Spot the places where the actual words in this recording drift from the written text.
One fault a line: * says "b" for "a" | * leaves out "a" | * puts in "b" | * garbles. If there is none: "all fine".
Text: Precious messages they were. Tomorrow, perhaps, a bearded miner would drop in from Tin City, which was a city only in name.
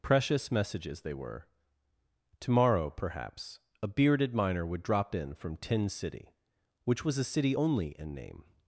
all fine